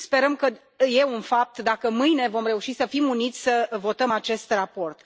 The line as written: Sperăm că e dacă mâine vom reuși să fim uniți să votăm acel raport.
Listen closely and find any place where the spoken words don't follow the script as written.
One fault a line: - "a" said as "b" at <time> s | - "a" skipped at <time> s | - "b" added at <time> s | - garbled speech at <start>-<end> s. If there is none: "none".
- "un fapt" added at 1.0 s
- "acel" said as "acest" at 4.1 s